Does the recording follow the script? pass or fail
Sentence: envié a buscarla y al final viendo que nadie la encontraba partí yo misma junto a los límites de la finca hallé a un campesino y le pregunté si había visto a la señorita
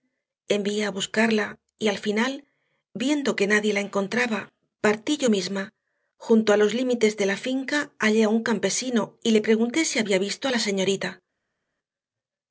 pass